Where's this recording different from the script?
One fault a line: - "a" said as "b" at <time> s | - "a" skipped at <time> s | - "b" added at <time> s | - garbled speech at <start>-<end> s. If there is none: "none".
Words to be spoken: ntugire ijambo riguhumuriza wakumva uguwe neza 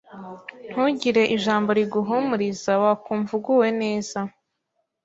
none